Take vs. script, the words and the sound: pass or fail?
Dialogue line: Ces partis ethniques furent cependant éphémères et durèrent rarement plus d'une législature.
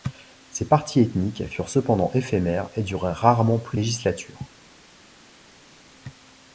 fail